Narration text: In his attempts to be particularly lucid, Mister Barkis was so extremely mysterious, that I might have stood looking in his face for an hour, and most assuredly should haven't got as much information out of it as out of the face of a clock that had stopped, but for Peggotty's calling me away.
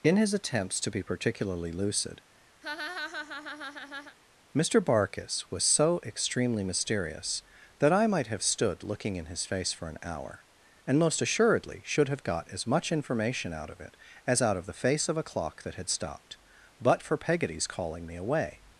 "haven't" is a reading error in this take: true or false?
true